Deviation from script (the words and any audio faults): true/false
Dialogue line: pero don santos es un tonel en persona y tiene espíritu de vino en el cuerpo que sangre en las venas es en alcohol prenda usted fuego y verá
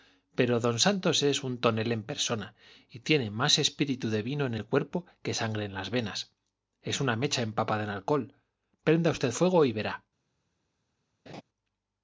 true